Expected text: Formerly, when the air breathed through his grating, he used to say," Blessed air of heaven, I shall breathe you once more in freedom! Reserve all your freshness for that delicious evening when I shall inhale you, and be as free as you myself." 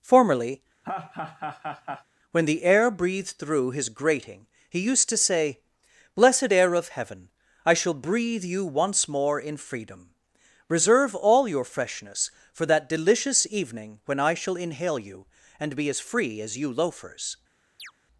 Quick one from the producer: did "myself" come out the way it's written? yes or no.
no